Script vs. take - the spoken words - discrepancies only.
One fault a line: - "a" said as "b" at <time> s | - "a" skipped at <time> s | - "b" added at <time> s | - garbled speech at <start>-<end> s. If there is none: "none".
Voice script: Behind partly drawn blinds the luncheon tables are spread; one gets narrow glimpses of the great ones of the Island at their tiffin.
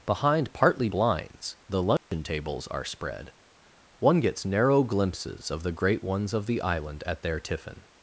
- "drawn" skipped at 0.9 s